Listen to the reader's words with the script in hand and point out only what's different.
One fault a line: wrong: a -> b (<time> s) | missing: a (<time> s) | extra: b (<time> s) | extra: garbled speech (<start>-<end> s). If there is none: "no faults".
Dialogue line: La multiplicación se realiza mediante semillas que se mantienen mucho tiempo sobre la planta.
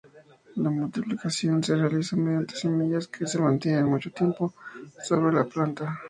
no faults